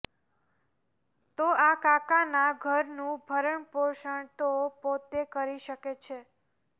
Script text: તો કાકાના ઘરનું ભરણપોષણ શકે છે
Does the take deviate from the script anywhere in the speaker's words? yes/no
yes